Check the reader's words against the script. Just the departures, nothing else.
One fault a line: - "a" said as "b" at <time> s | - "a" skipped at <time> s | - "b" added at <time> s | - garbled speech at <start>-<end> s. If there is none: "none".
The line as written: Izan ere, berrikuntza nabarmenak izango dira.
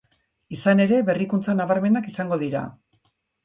none